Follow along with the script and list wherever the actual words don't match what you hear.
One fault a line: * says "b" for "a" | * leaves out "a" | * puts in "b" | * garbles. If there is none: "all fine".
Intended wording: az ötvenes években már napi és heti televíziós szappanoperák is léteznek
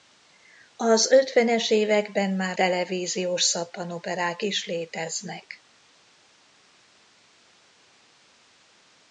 * leaves out "napi és heti"